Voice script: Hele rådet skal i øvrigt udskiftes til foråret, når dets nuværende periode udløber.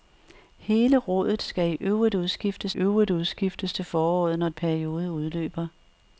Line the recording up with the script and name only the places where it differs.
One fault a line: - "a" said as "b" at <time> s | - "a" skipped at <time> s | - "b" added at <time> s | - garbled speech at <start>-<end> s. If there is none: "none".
- "øvrigt udskiftes" added at 2.8 s
- "dets nuværende" skipped at 4.5 s